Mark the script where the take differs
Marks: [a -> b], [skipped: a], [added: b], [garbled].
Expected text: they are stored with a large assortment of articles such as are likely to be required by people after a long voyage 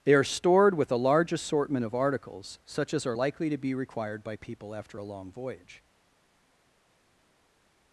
they are stored with a large assortment of articles such as are likely to be required by people after a long voyage